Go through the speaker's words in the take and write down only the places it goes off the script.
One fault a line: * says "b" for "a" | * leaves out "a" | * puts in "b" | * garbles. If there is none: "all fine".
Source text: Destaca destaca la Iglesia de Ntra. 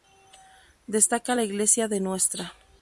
* leaves out "destaca"